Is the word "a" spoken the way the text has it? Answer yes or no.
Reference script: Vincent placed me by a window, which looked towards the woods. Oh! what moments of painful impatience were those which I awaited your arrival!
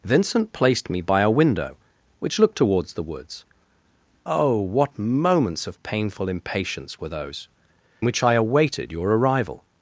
yes